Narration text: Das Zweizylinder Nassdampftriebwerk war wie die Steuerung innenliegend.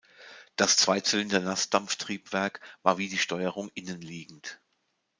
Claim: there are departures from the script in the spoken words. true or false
false